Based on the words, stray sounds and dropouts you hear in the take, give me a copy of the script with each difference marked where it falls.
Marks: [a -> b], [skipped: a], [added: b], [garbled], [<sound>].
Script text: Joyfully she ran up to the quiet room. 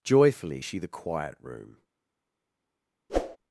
Joyfully she [skipped: ran up to] the quiet room. [whoosh]